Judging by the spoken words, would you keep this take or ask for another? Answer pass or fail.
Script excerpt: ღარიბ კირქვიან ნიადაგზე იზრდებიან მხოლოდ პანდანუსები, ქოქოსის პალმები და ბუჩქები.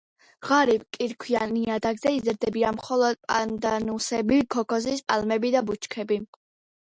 pass